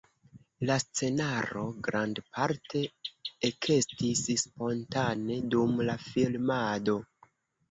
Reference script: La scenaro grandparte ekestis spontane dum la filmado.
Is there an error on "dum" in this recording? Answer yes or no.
no